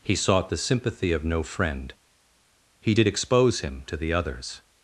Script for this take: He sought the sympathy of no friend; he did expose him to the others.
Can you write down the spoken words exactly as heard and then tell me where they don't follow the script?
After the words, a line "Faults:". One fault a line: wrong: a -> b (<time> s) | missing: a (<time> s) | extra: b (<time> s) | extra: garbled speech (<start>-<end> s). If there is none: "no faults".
He sought the sympathy of no friend; he did expose him to the others.
Faults:
no faults